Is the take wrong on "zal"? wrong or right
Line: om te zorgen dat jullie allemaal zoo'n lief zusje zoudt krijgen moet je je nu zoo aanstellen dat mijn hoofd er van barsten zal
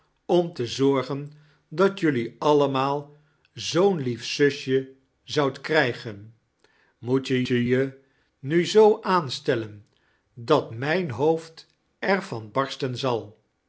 right